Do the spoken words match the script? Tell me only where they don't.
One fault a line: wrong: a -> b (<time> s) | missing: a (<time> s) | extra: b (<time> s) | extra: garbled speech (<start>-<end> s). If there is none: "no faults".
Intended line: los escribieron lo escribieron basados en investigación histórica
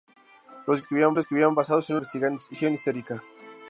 no faults